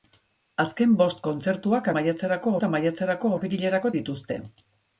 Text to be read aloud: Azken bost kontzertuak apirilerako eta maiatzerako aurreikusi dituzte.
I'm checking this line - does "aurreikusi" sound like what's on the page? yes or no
no